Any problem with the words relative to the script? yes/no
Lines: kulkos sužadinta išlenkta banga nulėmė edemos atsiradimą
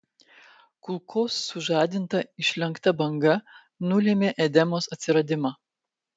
no